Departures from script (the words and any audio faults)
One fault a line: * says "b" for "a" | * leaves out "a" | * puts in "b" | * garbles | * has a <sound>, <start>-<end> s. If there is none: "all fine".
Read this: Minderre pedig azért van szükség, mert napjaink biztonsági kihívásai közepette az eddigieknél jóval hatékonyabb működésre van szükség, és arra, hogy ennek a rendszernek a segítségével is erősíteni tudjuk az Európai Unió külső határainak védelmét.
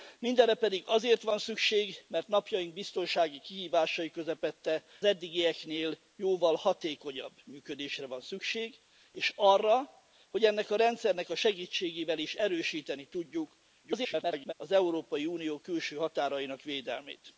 * leaves out "az"
* garbles